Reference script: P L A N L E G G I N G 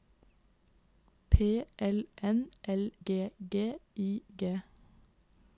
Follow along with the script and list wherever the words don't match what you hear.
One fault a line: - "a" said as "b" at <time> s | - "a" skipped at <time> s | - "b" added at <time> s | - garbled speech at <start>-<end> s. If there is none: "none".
- "A" skipped at 2.0 s
- "E" skipped at 2.9 s
- "N" skipped at 4.2 s